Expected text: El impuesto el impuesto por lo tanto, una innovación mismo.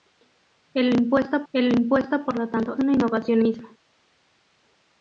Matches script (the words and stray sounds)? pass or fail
pass